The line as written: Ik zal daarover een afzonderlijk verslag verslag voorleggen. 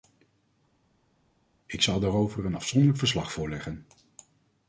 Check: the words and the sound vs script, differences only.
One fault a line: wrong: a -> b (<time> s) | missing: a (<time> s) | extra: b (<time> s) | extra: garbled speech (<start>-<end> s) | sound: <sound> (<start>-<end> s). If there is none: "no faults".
missing: verslag (3.3 s)